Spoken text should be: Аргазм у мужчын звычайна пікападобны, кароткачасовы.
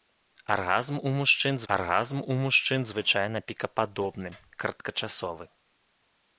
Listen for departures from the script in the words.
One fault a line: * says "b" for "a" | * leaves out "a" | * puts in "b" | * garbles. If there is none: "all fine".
* puts in "аргазм у мужчын"